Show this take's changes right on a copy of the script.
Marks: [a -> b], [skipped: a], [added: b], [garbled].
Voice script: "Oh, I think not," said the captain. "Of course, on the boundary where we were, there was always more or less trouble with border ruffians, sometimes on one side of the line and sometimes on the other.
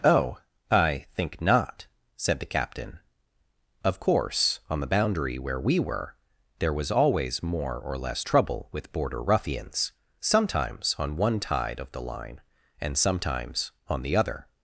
"Oh, I think not," said the captain. "Of course, on the boundary where we were, there was always more or less trouble with border ruffians, sometimes on one [side -> tide] of the line and sometimes on the other.